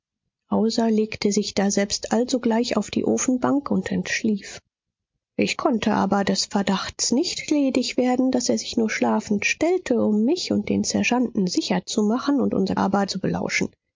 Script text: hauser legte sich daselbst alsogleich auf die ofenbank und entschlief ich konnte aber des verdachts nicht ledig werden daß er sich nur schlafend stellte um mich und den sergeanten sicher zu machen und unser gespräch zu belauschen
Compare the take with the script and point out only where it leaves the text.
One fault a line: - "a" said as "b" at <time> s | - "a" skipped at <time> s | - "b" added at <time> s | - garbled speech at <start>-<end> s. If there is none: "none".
- "gespräch" said as "aber" at 12.7 s